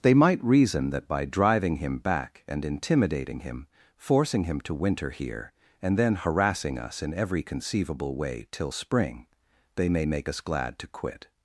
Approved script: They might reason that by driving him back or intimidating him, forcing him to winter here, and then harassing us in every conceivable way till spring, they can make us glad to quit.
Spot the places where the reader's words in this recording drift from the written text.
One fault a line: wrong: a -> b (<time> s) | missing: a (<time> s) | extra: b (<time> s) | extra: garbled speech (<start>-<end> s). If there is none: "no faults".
wrong: or -> and (2.5 s)
wrong: can -> may (9.9 s)